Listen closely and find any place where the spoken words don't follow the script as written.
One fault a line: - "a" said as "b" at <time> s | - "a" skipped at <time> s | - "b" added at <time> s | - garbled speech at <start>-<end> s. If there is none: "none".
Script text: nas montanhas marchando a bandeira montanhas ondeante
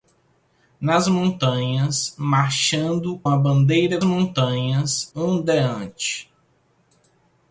none